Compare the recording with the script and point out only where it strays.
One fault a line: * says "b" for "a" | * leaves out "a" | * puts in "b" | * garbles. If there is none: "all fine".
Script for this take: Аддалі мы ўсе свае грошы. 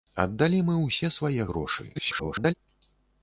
* garbles